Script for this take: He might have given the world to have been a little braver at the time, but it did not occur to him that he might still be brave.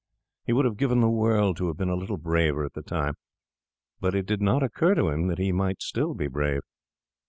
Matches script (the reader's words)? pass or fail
fail